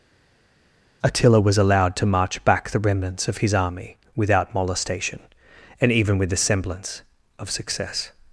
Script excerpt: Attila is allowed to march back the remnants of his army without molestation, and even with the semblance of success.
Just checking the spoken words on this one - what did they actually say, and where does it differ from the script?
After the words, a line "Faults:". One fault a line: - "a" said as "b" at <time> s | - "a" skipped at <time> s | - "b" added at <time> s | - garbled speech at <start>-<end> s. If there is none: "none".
Attila was allowed to march back the remnants of his army without molestation, and even with the semblance of success.
Faults:
- "is" said as "was" at 1.4 s